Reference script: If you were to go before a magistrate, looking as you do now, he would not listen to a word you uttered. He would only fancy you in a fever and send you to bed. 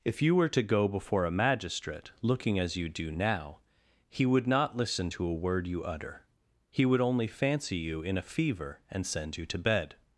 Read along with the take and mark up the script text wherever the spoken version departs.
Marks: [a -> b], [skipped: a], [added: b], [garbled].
If you were to go before a magistrate, looking as you do now, he would not listen to a word you [uttered. -> utter] He would only fancy you in a fever and send you to bed.